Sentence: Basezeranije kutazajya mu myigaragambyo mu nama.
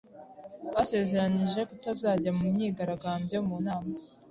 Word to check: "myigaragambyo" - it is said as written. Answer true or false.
true